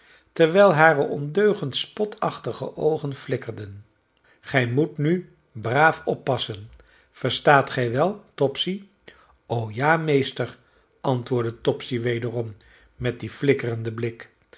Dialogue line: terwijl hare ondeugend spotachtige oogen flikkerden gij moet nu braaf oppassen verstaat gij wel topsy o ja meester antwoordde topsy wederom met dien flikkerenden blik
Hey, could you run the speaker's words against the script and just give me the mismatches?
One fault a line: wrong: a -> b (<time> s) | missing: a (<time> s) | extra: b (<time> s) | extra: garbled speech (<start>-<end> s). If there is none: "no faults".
no faults